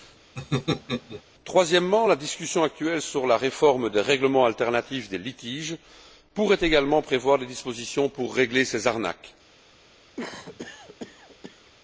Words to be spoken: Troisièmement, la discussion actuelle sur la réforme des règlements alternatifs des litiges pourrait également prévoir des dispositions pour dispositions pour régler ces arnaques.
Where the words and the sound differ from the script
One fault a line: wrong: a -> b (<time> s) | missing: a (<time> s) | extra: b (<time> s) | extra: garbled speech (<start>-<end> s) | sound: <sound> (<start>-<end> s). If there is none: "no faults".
sound: laugh (0.4-1.2 s)
missing: dispositions pour (8.3 s)
sound: cough (10.2-11.7 s)